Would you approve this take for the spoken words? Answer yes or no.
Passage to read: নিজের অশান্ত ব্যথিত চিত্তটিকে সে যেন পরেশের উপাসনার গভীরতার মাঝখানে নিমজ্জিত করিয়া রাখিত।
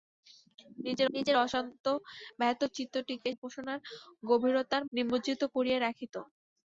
no